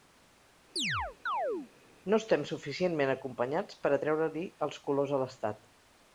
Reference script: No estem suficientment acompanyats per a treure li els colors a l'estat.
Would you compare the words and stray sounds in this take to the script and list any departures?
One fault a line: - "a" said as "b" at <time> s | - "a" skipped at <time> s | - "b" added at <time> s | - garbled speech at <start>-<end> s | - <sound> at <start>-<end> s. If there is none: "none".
- chirp at 0.8-1.7 s